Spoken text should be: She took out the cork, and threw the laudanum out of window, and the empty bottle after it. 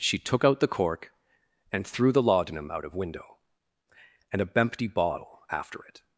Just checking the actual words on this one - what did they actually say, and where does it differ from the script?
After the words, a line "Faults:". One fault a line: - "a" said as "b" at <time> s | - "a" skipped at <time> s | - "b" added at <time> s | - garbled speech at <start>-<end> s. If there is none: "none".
She took out the cork, and threw the laudanum out of window, and a empty bottle after it.
Faults:
- "the" said as "a" at 4.4 s